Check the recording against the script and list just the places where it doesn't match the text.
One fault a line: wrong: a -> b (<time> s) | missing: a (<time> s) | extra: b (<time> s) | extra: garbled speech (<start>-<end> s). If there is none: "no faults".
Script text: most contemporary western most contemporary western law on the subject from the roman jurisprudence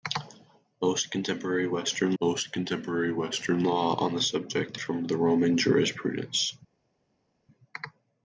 no faults